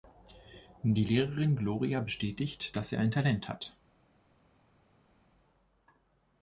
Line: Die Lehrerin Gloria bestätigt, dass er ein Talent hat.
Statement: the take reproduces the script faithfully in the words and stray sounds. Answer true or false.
true